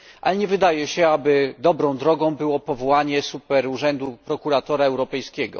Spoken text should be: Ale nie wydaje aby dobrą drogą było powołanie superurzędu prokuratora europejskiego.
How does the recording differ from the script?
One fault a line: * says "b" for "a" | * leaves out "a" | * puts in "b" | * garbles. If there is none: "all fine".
* puts in "się"